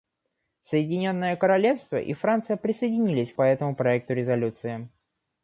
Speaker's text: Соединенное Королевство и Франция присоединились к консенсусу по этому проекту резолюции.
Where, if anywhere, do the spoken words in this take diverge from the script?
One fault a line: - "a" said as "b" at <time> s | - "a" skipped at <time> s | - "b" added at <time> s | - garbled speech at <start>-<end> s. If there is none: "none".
- "консенсусу" skipped at 3.4 s